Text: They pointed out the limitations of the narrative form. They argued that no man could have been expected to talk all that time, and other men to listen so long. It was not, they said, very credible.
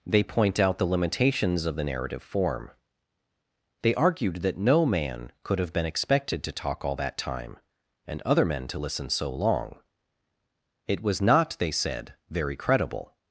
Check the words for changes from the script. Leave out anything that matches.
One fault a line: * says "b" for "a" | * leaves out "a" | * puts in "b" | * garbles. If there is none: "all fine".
* says "point" for "pointed"